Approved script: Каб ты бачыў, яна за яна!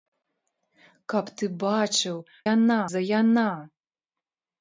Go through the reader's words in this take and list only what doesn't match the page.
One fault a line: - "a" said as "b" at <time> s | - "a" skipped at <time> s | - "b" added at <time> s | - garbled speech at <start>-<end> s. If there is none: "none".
none